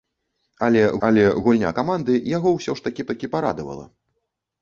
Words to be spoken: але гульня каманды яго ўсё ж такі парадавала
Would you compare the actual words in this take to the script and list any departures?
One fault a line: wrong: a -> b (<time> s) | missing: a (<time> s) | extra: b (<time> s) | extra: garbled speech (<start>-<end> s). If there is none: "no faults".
extra: але (1.1 s)
extra: такі (3.1 s)